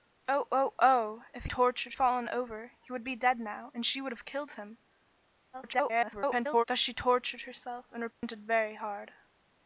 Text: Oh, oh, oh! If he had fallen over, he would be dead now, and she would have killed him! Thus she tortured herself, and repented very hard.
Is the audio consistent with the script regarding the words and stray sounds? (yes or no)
no